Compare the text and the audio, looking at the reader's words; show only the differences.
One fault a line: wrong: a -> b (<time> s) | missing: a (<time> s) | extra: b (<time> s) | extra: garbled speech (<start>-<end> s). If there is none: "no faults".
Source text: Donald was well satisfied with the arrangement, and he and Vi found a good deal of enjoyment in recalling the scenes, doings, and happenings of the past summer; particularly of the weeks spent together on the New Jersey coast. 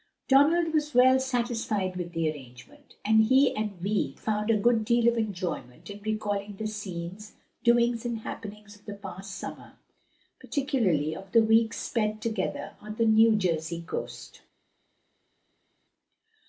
no faults